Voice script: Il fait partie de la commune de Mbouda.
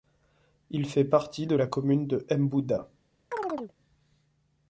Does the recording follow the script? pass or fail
pass